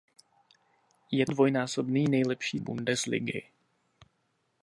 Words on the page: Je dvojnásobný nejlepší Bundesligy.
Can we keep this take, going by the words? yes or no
yes